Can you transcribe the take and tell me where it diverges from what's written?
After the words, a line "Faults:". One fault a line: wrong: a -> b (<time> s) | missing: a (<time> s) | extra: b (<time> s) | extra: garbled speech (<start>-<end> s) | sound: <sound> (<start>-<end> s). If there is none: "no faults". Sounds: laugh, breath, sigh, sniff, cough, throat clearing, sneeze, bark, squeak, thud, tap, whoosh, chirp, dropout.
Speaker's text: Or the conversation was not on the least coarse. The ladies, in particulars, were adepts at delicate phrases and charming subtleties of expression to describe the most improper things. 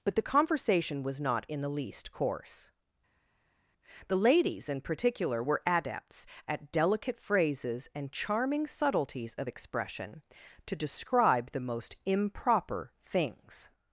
But the conversation was not in the least coarse. The ladies, in particular, were adepts at delicate phrases and charming subtleties of expression to describe the most improper things.
Faults:
wrong: Or -> But (0.0 s)
wrong: on -> in (1.5 s)
wrong: particulars -> particular (4.8 s)